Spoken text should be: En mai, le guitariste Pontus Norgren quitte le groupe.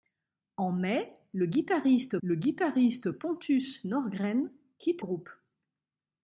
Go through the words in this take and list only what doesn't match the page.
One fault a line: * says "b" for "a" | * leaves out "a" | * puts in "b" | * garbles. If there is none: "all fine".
* puts in "le guitariste"
* leaves out "le"